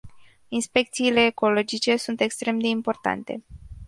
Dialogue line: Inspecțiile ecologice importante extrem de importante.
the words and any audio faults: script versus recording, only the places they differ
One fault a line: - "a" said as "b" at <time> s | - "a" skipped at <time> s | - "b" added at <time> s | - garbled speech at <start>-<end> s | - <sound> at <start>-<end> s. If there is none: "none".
- "importante" said as "sunt" at 1.9 s